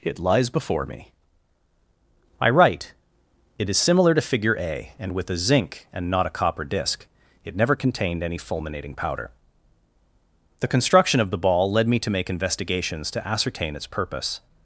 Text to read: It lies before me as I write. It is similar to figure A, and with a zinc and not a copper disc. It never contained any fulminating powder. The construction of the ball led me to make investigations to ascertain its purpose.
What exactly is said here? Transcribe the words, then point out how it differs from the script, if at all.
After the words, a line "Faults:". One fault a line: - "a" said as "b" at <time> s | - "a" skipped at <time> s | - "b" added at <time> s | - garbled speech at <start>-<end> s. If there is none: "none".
It lies before me I write. It is similar to figure A, and with a zinc and not a copper disc. It never contained any fulminating powder. The construction of the ball led me to make investigations to ascertain its purpose.
Faults:
- "as" skipped at 1.1 s